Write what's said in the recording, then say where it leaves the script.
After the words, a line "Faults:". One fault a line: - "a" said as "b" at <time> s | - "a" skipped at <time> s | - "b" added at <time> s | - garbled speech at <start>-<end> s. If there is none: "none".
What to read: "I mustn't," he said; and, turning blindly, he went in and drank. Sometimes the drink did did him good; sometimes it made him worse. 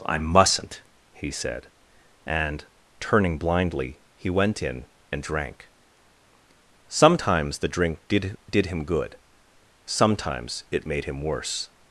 "I mustn't," he said; and, turning blindly, he went in and drank. Sometimes the drink did did him good; sometimes it made him worse.
Faults:
none